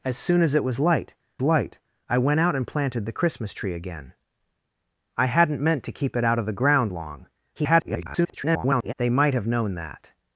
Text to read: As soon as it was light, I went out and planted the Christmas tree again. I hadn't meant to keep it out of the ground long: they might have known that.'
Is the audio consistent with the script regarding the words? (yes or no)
no